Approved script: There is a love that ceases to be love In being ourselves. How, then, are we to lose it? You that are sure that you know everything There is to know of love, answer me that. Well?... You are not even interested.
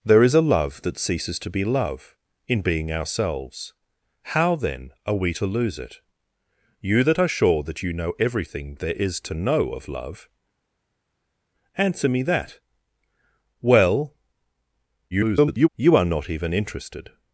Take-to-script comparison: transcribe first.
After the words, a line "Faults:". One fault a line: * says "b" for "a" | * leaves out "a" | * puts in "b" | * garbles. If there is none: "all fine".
There is a love that ceases to be love In being ourselves. How, then, are we to lose it? You that are sure that you know everything There is to know of love, answer me that. Well?... [garbled] You are not even interested.
Faults:
* garbles